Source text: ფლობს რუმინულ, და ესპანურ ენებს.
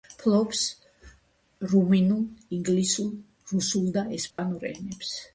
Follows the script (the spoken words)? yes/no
no